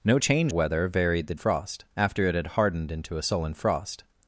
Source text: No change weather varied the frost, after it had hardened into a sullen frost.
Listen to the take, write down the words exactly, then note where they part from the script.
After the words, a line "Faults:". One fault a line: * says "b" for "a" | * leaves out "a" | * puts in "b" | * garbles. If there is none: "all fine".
No change weather varied the frost, after it had hardened into a sullen frost.
Faults:
all fine